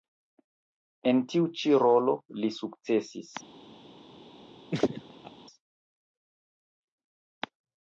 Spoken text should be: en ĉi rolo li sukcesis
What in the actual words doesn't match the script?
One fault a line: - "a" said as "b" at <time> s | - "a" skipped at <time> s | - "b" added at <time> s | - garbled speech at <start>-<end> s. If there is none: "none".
- "tiu" added at 1.3 s